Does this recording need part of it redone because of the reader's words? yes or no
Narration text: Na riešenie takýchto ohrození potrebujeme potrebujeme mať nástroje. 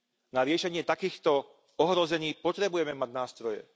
yes